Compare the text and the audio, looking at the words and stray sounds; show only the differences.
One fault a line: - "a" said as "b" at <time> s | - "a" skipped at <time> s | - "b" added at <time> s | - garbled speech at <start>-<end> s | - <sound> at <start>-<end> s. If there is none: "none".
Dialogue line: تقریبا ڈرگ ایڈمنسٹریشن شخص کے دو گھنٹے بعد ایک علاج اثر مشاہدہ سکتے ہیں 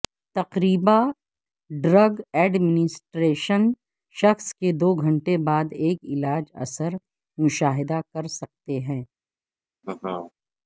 - "کر" added at 8.1 s
- laugh at 9.8-10.3 s